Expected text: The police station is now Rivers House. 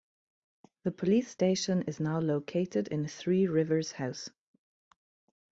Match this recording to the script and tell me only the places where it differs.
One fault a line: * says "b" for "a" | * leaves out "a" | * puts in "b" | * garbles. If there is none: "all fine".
* puts in "located in Three"